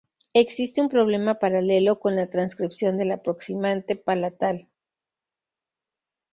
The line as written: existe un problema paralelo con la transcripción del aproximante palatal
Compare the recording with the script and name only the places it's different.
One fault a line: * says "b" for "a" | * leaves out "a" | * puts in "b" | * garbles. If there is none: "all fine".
all fine